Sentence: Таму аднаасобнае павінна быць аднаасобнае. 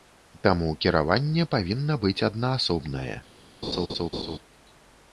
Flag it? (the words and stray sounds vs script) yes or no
yes